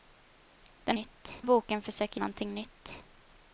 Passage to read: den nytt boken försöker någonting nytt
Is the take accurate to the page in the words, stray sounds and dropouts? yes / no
yes